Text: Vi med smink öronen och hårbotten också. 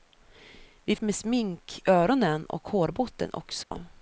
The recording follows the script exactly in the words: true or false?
true